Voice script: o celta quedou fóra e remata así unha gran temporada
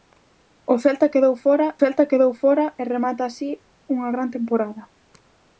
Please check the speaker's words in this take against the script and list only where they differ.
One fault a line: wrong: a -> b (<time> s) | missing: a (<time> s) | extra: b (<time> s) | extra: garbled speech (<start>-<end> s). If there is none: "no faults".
extra: celta quedou fóra (1.8 s)